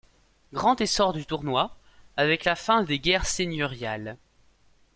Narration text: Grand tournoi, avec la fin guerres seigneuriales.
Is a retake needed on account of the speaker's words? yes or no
yes